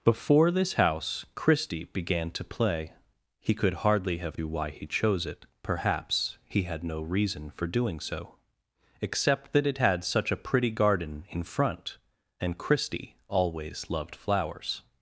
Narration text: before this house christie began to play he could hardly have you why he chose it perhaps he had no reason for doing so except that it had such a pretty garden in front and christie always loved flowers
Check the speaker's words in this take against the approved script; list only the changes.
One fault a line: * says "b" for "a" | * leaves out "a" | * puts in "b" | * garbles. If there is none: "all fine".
all fine